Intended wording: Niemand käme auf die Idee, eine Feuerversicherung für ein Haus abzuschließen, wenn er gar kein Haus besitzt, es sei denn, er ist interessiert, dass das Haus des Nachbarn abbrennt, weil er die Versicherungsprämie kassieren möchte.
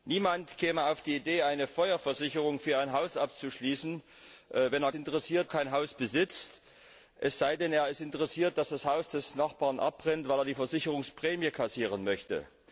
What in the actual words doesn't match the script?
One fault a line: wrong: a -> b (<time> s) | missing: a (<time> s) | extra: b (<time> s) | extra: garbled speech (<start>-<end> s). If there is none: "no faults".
wrong: gar -> interessiert (4.9 s)